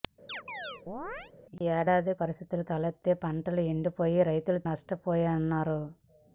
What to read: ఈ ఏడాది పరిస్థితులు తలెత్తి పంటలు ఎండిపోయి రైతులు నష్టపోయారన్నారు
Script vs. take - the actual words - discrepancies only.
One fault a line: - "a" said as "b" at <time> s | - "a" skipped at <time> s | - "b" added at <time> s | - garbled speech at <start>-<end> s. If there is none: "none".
none